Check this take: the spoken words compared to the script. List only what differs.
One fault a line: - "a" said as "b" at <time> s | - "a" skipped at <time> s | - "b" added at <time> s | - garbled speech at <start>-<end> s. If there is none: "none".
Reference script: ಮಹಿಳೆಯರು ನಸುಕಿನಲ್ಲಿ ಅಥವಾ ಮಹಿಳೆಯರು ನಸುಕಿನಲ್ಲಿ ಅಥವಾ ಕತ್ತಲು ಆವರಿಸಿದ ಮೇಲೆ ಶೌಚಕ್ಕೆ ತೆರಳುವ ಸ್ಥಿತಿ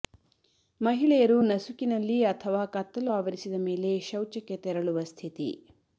- "ಮಹಿಳೆಯರು ನಸುಕಿನಲ್ಲಿ ಅಥವಾ" skipped at 2.6 s